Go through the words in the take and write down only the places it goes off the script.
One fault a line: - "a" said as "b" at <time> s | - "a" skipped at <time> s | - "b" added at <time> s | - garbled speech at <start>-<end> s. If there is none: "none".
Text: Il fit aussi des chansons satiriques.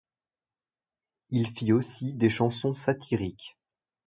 none